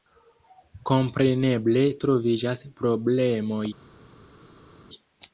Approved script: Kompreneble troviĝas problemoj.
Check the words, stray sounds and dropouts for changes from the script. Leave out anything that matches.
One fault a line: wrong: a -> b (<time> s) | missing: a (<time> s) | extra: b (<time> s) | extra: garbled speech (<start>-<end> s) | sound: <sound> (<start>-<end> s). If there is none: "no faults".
no faults